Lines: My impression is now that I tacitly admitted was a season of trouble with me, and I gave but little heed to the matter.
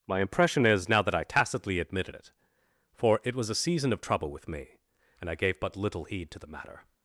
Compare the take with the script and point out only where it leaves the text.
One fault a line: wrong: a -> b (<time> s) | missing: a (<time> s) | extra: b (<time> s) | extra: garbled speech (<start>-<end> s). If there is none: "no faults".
extra: it for it (2.1 s)